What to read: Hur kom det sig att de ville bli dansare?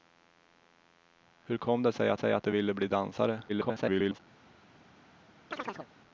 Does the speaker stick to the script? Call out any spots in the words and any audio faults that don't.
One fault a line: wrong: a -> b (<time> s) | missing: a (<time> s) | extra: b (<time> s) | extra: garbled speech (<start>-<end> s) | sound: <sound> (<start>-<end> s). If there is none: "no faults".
extra: sig att (2.1 s)
extra: garbled speech (3.5-4.2 s)
sound: chirp (5.5-5.9 s)